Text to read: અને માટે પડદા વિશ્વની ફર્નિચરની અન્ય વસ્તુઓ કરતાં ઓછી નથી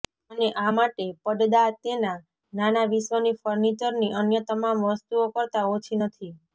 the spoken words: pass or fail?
fail